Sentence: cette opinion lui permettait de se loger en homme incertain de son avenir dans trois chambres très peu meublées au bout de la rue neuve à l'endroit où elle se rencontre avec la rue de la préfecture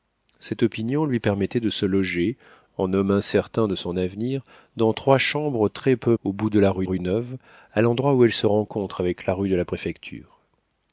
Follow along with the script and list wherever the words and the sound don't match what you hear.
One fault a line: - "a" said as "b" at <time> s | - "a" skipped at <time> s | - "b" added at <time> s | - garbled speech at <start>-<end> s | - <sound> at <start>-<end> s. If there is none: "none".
- "meublées" skipped at 6.2 s
- "rue" added at 6.8 s